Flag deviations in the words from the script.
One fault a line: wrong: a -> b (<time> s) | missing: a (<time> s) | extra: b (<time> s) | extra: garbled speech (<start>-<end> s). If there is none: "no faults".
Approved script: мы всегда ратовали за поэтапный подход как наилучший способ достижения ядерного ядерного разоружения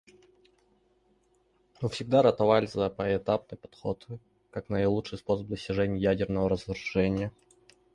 missing: ядерного (6.5 s)